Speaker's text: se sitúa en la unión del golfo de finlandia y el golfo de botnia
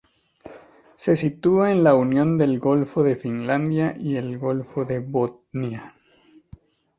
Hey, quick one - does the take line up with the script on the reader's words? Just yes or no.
yes